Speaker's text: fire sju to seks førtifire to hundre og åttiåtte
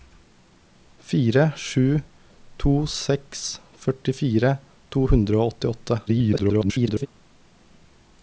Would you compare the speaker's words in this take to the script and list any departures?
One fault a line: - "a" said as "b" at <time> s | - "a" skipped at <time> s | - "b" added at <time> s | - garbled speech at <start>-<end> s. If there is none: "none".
- garbled speech at 6.1-7.1 s